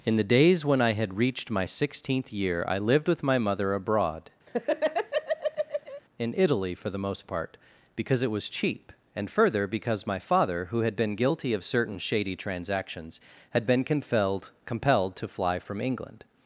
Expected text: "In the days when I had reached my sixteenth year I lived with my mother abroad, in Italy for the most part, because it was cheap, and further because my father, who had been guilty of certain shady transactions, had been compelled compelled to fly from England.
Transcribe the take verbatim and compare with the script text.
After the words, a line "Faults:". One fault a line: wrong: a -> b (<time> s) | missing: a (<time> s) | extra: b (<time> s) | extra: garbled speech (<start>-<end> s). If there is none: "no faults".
"In the days when I had reached my sixteenth year I lived with my mother abroad, in Italy for the most part, because it was cheap, and further because my father, who had been guilty of certain shady transactions, had been compelled compelled to fly from England.
Faults:
no faults